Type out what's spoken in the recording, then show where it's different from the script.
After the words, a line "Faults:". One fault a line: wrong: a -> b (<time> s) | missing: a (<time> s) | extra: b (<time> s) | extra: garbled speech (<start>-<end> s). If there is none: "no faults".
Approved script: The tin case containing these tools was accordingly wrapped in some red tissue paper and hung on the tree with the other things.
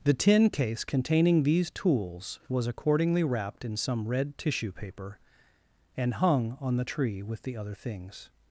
The tin case containing these tools was accordingly wrapped in some red tissue paper and hung on the tree with the other things.
Faults:
no faults